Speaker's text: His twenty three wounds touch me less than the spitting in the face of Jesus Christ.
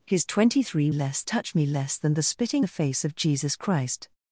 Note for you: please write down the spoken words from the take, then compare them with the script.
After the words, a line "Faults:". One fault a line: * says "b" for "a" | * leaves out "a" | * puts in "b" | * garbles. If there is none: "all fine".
His twenty three less touch me less than the spitting the face of Jesus Christ.
Faults:
* says "less" for "wounds"
* leaves out "in"